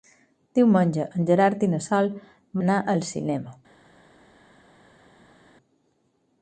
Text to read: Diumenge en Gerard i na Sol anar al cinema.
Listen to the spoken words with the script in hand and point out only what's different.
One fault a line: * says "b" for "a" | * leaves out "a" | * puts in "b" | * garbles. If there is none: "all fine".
all fine